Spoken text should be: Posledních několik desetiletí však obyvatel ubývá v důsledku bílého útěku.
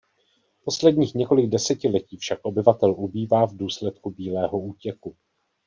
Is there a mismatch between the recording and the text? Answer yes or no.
no